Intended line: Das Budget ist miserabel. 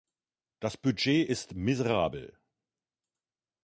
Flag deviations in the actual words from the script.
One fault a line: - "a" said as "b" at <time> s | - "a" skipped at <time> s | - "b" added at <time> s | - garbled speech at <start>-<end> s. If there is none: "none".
none